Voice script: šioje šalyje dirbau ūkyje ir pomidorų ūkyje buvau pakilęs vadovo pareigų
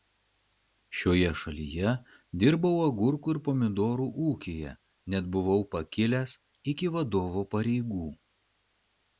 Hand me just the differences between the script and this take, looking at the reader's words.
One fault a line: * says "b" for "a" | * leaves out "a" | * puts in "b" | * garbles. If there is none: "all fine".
* says "agurkų" for "ūkyje"
* puts in "net"
* puts in "iki"